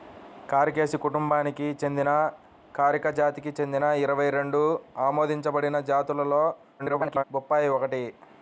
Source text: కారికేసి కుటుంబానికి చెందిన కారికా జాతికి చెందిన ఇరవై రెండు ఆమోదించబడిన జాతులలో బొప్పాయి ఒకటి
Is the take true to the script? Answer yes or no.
no